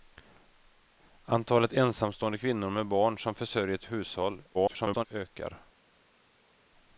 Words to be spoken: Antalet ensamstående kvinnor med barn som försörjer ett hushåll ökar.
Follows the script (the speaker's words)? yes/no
no